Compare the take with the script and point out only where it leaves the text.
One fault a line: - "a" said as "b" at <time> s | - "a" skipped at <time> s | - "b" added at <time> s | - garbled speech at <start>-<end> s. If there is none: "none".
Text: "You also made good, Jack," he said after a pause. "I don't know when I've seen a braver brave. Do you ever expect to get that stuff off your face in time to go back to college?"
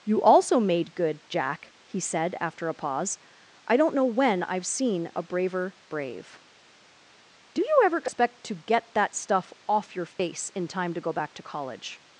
none